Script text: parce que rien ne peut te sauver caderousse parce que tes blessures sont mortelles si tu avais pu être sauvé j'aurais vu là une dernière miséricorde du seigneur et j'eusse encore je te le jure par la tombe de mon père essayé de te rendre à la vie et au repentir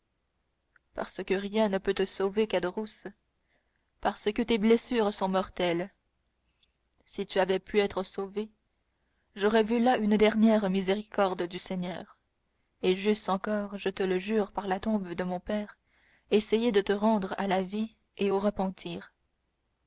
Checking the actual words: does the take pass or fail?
pass